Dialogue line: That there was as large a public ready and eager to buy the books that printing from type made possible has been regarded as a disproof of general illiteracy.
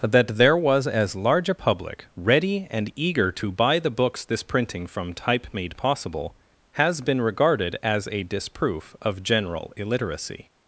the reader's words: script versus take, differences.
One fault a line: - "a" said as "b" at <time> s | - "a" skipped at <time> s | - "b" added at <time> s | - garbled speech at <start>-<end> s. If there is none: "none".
- "that" said as "this" at 4.2 s